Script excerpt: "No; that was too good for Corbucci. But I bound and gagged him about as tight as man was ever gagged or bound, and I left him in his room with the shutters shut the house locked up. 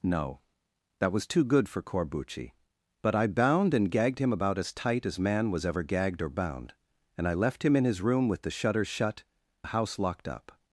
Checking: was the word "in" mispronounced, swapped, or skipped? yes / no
no